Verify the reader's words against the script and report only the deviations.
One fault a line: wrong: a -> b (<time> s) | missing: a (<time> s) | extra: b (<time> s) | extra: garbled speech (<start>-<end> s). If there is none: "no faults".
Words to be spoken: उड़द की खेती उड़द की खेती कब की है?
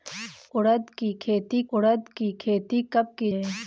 no faults